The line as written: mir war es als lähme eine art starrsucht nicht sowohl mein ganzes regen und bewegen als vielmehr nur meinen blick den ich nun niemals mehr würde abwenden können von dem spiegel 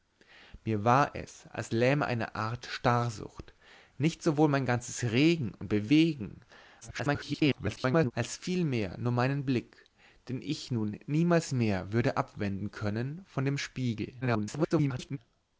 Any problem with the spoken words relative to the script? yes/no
yes